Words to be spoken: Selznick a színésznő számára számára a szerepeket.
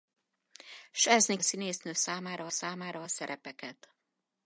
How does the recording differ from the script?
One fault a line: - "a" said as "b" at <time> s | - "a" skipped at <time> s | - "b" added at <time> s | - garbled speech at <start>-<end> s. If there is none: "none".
none